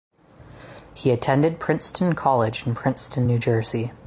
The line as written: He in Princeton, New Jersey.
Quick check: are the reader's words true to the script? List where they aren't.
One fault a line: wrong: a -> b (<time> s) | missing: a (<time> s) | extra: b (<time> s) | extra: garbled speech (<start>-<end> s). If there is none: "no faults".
extra: attended Princeton College (1.1 s)